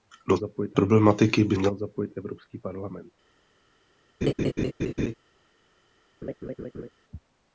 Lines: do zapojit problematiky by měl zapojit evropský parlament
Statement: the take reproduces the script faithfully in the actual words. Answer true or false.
true